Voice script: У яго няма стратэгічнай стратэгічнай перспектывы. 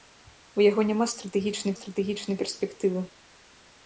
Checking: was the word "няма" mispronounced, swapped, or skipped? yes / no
no